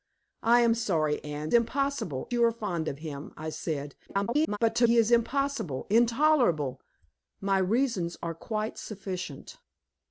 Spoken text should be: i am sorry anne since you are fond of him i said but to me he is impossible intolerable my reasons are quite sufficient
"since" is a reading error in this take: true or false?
true